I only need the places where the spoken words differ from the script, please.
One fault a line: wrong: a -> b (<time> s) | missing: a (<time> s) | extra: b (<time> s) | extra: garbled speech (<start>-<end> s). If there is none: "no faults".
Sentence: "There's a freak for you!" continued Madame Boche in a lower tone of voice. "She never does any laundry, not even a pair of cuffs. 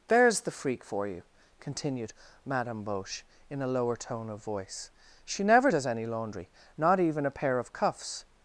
wrong: a -> the (0.4 s)